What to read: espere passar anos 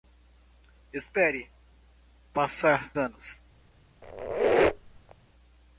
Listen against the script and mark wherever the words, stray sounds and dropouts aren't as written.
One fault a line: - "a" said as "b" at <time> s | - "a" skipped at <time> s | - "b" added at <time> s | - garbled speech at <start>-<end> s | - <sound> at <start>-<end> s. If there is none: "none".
- squeak at 4.0-5.1 s